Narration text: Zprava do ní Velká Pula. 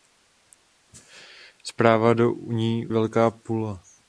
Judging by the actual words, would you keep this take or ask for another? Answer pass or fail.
pass